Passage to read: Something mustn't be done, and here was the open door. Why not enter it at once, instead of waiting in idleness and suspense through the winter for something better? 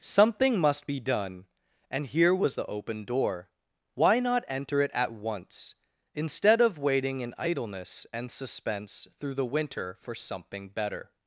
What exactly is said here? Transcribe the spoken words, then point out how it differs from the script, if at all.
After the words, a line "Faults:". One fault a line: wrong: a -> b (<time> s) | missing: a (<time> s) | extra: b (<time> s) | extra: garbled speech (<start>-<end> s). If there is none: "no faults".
Something must be done, and here was the open door. Why not enter it at once, instead of waiting in idleness and suspense through the winter for something better?
Faults:
wrong: mustn't -> must (0.6 s)